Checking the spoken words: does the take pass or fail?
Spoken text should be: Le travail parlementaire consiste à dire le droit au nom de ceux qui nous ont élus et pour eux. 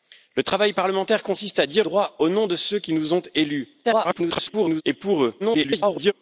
fail